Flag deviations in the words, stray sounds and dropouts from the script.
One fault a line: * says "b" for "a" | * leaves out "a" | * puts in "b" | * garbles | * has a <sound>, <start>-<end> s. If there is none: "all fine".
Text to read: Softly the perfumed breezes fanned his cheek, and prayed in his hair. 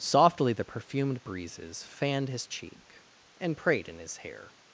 all fine